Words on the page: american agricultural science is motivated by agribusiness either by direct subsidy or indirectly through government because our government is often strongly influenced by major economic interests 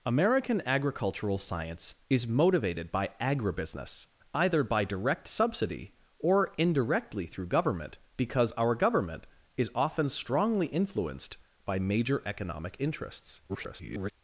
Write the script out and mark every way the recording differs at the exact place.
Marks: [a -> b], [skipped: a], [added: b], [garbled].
american agricultural science is motivated by agribusiness either by direct subsidy or indirectly through government because our government is often strongly influenced by major economic interests [garbled]